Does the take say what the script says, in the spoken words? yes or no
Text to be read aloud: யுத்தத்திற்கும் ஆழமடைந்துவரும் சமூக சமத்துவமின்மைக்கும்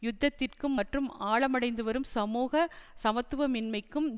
no